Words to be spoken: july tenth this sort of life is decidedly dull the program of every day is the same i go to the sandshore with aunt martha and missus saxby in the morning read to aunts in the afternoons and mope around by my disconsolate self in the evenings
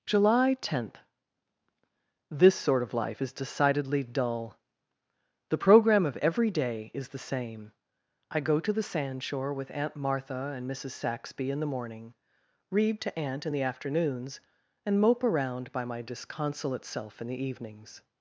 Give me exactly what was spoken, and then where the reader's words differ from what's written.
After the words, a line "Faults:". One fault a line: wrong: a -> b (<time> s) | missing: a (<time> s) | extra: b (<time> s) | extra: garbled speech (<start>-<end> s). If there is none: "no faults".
july tenth this sort of life is decidedly dull the program of every day is the same i go to the sandshore with aunt martha and missus saxby in the morning read to aunt in the afternoons and mope around by my disconsolate self in the evenings
Faults:
wrong: aunts -> aunt (13.2 s)